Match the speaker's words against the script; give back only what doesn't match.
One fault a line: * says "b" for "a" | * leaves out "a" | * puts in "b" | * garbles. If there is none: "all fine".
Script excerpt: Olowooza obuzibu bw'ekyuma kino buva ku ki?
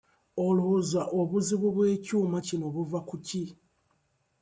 all fine